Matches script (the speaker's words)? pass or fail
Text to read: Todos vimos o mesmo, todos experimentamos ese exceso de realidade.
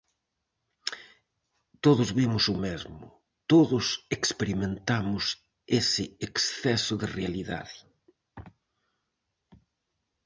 pass